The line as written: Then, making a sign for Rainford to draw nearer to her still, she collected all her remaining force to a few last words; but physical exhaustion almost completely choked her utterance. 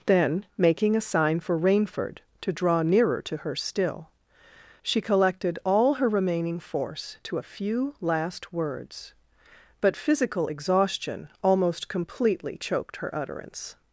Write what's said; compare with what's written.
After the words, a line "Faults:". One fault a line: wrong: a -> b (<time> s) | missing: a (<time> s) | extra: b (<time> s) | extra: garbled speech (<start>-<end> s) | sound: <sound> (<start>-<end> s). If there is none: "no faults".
Then, making a sign for Rainford to draw nearer to her still, she collected all her remaining force to a few last words; but physical exhaustion almost completely choked her utterance.
Faults:
no faults